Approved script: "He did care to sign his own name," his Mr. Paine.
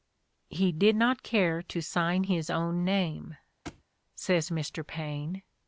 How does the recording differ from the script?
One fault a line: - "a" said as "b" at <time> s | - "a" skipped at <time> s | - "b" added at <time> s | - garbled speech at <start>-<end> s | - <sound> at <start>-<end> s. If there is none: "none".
- "not" added at 0.9 s
- thud at 3.6-3.8 s
- "his" said as "says" at 4.1 s